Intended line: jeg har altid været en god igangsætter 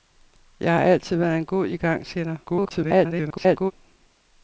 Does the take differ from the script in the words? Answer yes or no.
yes